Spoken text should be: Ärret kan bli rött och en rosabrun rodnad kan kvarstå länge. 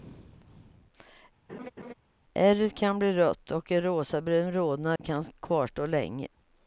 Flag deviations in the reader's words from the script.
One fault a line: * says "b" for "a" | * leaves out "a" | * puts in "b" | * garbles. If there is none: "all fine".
all fine